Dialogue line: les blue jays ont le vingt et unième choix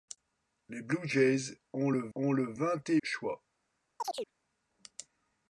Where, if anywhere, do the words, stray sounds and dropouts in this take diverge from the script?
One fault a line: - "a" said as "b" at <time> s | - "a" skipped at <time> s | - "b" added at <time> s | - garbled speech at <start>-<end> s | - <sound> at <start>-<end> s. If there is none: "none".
- "ont le" added at 2.2 s
- "unième" skipped at 3.0 s
- chirp at 4.0-4.3 s